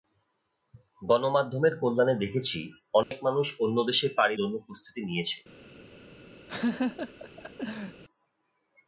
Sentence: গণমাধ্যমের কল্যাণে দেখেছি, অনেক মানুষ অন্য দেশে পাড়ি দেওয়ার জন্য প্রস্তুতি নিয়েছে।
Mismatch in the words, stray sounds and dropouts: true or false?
true